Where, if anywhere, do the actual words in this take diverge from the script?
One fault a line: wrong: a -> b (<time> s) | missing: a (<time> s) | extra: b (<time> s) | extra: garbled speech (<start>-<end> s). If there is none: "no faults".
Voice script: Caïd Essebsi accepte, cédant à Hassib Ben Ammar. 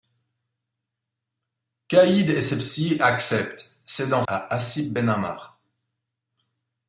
no faults